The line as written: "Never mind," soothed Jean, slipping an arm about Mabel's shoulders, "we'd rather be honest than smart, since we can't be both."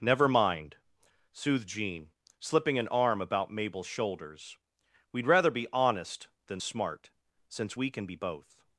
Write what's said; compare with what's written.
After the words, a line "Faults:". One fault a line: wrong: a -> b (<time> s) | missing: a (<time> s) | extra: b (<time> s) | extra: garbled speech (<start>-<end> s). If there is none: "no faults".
"Never mind," soothed Jean, slipping an arm about Mabel's shoulders, "we'd rather be honest than smart, since we can be both."
Faults:
wrong: can't -> can (7.9 s)